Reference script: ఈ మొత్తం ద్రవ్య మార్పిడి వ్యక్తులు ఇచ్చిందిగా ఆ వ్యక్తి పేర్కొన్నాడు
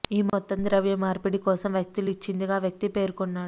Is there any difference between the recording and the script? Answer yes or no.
yes